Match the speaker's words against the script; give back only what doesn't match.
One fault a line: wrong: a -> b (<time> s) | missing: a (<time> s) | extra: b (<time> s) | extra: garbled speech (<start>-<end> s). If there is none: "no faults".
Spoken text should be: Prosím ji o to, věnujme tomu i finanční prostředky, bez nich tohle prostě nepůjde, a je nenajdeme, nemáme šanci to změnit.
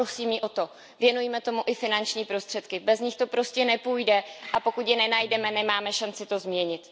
wrong: tohle -> to (3.1 s)
extra: pokud (4.6 s)